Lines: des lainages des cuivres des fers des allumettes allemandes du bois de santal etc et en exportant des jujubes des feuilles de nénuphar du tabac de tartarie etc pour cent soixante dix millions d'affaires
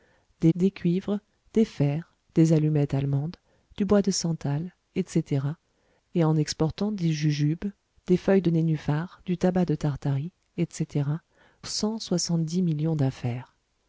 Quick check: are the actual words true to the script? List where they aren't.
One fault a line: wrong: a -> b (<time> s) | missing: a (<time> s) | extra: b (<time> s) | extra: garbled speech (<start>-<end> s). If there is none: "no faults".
missing: lainages (0.5 s)
missing: pour (11.1 s)